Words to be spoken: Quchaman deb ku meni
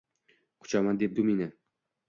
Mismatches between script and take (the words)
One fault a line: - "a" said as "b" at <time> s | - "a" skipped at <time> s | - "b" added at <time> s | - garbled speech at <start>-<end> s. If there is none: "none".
none